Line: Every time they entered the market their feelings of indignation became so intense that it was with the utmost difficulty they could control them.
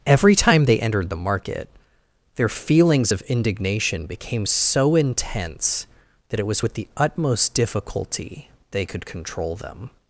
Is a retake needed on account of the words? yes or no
no